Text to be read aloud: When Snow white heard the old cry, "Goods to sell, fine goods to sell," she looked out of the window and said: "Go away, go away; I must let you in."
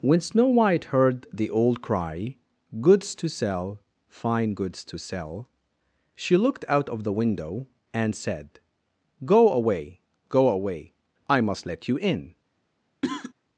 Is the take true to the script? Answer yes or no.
yes